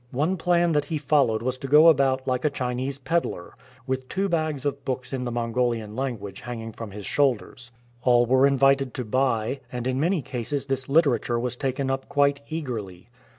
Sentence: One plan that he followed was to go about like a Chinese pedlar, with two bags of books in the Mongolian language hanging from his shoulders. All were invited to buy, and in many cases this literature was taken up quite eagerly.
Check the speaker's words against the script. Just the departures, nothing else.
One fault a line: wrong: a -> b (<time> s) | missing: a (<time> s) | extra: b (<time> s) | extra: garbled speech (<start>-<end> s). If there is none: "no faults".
no faults